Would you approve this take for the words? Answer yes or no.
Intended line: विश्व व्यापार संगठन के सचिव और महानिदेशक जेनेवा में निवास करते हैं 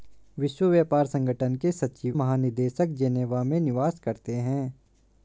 no